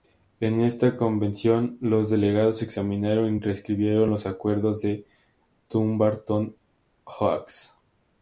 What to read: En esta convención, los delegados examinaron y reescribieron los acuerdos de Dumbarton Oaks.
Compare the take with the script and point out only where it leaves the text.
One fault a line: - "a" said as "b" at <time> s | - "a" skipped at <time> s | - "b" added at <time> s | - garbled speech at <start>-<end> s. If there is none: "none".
none